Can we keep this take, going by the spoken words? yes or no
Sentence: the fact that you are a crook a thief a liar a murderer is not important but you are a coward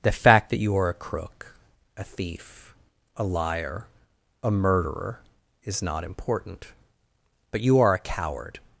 yes